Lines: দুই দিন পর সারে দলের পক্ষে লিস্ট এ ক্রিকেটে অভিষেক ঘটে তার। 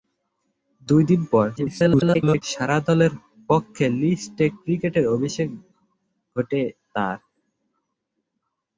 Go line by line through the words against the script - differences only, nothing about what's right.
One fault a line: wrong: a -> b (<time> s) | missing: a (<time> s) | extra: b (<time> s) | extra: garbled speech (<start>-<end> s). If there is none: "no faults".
extra: garbled speech (1.6-2.4 s)